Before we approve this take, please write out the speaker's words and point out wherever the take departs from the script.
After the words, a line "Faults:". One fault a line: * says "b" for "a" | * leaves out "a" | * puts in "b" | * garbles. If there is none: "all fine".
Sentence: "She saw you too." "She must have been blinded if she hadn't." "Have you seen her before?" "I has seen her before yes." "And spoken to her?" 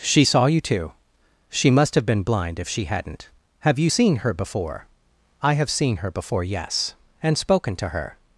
"She saw you too." "She must have been blind if she hadn't." "Have you seen her before?" "I have seen her before yes." "And spoken to her?"
Faults:
* says "blind" for "blinded"
* says "have" for "has"